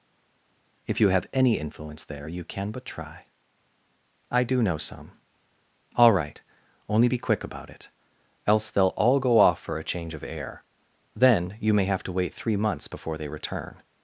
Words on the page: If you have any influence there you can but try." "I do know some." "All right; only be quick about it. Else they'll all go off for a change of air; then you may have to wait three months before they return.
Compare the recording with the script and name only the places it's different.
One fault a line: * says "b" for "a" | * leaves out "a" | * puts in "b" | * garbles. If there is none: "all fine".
all fine